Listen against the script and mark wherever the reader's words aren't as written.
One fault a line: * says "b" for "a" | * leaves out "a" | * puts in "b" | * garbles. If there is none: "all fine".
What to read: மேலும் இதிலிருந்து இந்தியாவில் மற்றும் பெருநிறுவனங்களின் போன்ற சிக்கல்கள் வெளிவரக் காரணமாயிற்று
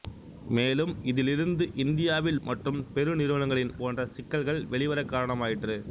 all fine